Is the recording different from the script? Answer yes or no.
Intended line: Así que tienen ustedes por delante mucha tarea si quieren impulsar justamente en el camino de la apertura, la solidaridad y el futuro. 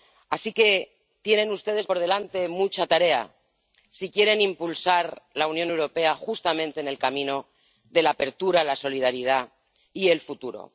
yes